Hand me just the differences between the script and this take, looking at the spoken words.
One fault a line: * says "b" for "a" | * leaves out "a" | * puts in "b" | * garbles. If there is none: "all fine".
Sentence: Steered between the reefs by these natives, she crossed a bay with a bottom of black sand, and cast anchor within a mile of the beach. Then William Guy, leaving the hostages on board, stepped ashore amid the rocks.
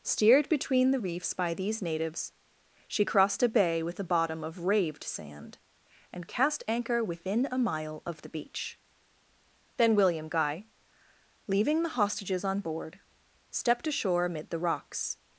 * says "raved" for "black"